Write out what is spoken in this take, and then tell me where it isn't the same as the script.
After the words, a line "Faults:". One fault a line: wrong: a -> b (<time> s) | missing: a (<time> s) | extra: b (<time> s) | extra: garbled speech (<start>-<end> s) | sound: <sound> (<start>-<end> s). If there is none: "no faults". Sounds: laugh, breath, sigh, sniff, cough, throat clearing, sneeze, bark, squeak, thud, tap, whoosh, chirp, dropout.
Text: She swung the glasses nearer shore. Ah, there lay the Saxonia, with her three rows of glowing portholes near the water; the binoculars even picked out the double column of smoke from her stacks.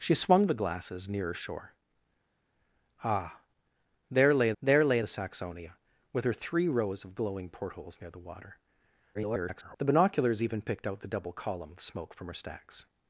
She swung the glasses nearer shore. Ah, there lay there lay the Saxonia, with her three rows of glowing portholes near the water; [garbled] the binoculars even picked out the double column of smoke from her stacks.
Faults:
extra: there lay (4.6 s)
extra: garbled speech (9.1-9.8 s)